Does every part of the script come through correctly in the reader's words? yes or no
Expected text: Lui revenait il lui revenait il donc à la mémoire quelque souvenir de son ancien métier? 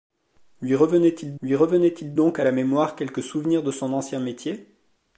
yes